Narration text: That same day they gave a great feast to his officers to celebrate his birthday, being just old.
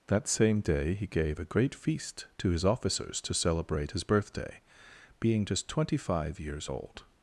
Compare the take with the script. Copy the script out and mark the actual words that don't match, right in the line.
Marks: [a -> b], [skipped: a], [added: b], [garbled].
That same day [they -> he] gave a great feast to his officers to celebrate his birthday, being just [added: twenty five years] old.